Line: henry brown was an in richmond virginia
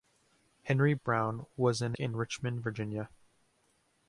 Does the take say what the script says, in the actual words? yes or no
yes